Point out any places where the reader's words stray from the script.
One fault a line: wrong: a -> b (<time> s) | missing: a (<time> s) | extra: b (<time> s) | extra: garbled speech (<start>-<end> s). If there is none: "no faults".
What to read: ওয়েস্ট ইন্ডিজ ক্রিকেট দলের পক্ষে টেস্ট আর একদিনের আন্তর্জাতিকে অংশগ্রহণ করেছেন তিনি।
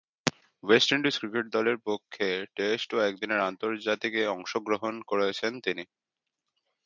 wrong: আর -> ও (2.9 s)